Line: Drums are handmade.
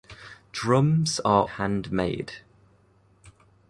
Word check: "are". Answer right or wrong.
right